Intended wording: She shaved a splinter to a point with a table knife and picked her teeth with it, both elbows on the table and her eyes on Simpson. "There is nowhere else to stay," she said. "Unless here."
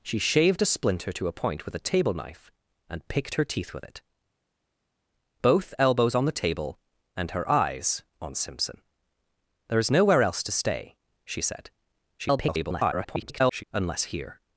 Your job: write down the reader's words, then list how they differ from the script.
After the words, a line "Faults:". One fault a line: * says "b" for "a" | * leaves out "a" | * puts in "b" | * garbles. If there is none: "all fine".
She shaved a splinter to a point with a table knife and picked her teeth with it, both elbows on the table and her eyes on Simpson. "There is nowhere else to stay," she said. [garbled] "Unless here."
Faults:
* garbles